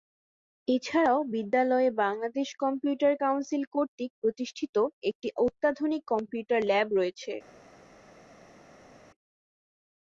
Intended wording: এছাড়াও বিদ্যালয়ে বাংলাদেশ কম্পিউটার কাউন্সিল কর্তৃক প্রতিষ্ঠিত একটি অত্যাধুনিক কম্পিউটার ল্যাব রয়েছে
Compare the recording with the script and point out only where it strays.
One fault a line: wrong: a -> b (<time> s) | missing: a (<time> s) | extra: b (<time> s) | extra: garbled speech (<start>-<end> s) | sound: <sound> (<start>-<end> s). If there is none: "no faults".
no faults